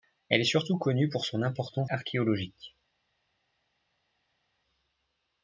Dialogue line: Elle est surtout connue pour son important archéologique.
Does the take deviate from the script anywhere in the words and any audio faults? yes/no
no